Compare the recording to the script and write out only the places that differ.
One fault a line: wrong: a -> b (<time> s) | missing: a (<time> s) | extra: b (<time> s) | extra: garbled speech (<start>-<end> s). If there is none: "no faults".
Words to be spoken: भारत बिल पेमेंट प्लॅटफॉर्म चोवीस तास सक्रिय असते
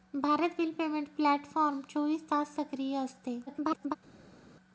extra: garbled speech (3.5-4.0 s)